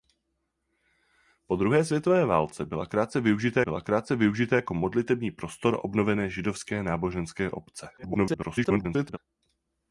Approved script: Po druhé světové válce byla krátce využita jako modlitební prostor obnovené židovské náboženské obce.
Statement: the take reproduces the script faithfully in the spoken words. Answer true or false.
false